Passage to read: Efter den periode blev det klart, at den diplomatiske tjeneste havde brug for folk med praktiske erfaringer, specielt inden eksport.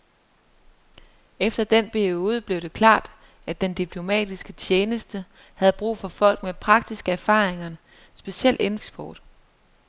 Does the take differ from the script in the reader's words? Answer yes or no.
no